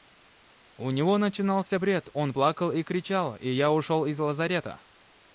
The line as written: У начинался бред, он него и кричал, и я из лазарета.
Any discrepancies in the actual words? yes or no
yes